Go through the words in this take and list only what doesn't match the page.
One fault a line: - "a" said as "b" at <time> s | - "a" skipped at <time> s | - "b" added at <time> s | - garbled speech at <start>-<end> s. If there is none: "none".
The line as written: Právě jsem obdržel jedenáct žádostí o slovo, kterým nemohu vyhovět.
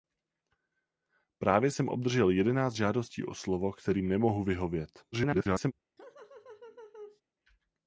- garbled speech at 5.1-5.7 s